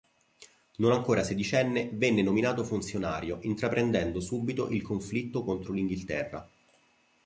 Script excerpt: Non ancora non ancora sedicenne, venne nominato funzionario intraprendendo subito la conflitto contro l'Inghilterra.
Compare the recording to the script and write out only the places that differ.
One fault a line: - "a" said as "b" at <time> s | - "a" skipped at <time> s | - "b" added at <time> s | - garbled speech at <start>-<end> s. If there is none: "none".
- "non ancora" skipped at 1.2 s
- "la" said as "il" at 4.7 s